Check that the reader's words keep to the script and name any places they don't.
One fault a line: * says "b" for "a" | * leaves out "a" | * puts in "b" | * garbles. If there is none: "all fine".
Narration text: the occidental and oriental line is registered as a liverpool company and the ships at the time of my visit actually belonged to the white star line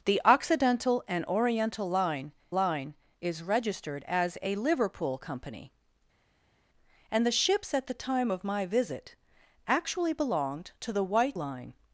* puts in "line"
* leaves out "star"